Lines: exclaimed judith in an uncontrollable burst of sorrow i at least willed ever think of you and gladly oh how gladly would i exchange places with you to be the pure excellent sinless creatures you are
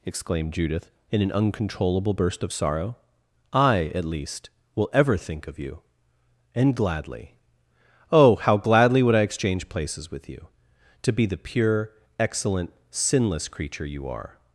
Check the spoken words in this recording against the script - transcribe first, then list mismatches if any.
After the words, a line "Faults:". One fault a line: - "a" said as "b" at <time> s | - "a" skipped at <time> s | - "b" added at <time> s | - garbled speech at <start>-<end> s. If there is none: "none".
exclaimed judith in an uncontrollable burst of sorrow i at least will ever think of you and gladly oh how gladly would i exchange places with you to be the pure excellent sinless creature you are
Faults:
- "willed" said as "will" at 4.8 s
- "creatures" said as "creature" at 13.5 s